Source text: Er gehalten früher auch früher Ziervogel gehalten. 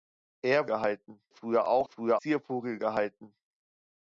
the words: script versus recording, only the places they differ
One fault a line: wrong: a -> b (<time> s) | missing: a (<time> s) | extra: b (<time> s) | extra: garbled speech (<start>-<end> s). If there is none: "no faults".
no faults